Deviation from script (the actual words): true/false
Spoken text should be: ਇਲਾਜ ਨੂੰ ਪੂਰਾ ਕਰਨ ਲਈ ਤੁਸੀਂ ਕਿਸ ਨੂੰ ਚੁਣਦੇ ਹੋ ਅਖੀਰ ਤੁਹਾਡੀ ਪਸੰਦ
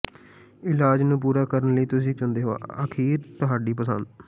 true